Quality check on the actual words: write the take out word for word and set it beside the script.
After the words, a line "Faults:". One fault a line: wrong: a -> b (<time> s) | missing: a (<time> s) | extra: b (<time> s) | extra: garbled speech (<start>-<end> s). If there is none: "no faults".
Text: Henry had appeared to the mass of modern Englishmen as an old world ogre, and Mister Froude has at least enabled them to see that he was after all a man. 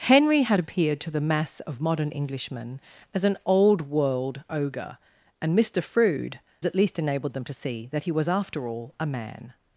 Henry had appeared to the mass of modern Englishmen as an old world ogre, and Mister Froude at least enabled them to see that he was after all a man.
Faults:
missing: has (6.4 s)